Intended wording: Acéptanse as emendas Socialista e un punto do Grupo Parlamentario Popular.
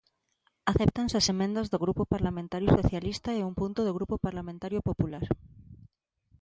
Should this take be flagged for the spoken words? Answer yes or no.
yes